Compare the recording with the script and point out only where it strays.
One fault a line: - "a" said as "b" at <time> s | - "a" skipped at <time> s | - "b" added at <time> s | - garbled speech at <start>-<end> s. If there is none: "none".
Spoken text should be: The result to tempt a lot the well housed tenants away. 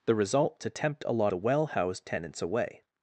none